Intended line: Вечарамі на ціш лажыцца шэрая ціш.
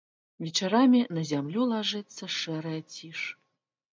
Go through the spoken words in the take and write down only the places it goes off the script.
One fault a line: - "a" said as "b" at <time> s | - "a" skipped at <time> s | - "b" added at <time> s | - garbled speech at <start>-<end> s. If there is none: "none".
- "ціш" said as "зямлю" at 1.3 s